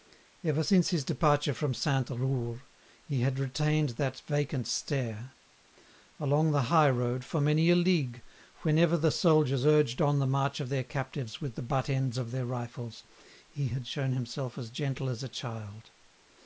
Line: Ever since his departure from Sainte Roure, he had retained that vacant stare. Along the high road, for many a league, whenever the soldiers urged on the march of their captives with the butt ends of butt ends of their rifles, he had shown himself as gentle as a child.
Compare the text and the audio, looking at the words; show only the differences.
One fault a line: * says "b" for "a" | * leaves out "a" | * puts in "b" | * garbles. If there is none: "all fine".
* leaves out "butt ends of"